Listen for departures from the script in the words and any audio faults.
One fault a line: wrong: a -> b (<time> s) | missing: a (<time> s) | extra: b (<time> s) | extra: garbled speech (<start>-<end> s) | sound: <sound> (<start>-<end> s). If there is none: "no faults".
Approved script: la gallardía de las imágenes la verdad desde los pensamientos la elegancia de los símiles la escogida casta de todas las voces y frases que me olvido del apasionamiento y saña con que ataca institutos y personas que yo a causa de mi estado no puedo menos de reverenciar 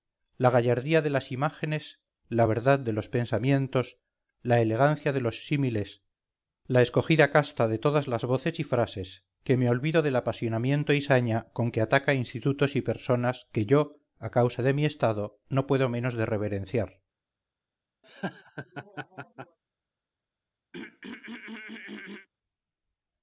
wrong: desde -> de (2.8 s)
sound: laugh (18.0-19.6 s)
sound: throat clearing (20.7-22.3 s)